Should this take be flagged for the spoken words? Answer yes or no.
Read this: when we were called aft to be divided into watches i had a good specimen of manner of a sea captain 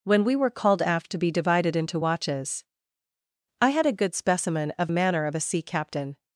no